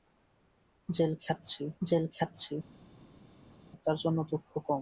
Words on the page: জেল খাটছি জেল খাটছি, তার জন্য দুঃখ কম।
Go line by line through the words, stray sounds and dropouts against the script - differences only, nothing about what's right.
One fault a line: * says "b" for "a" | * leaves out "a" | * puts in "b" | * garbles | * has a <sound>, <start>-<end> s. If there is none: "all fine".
all fine